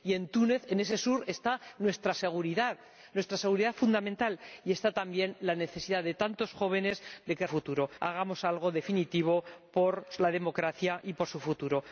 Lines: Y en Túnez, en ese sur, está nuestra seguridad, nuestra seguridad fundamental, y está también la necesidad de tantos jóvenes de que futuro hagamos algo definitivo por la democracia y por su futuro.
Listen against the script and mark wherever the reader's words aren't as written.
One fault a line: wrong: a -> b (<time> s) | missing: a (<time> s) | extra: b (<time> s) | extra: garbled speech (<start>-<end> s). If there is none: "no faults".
no faults